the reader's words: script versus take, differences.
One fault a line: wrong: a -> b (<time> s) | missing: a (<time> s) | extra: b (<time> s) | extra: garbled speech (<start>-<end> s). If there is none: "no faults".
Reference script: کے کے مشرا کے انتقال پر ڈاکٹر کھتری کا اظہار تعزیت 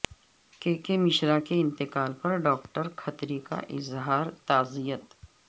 no faults